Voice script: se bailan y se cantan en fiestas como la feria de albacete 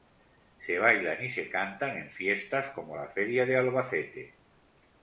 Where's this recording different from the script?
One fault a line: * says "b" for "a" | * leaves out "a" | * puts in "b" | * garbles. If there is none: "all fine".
all fine